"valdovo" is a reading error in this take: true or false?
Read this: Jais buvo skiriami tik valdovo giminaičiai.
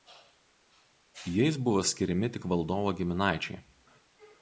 false